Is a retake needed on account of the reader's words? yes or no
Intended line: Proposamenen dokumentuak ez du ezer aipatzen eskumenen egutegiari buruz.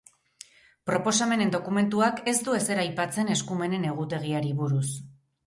no